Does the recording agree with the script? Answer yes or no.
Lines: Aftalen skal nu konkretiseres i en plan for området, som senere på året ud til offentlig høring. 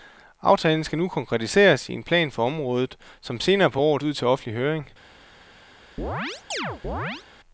yes